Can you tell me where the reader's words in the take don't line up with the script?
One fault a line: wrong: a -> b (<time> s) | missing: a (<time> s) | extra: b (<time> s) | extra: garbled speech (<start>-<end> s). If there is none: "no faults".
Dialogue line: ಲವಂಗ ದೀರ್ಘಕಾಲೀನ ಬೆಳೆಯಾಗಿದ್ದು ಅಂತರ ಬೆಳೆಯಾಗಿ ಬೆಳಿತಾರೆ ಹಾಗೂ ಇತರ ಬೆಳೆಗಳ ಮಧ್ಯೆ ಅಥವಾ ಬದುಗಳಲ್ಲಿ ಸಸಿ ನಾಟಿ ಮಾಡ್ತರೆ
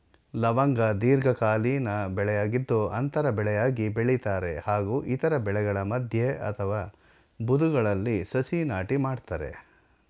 no faults